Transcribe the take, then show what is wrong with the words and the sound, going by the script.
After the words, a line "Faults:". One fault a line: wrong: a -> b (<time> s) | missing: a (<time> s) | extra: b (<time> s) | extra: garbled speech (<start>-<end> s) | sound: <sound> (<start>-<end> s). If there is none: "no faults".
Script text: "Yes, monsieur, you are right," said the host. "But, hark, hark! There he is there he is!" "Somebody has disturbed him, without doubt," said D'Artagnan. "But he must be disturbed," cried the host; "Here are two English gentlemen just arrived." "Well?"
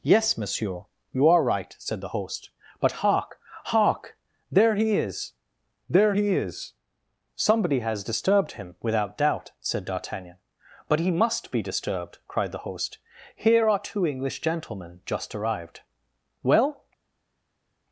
"Yes, monsieur, you are right," said the host. "But, hark, hark! There he is there he is!" "Somebody has disturbed him, without doubt," said D'Artagnan. "But he must be disturbed," cried the host; "Here are two English gentlemen just arrived." "Well?"
Faults:
no faults